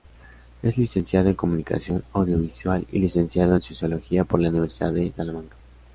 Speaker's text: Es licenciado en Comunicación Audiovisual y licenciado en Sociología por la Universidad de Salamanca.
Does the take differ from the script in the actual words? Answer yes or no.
no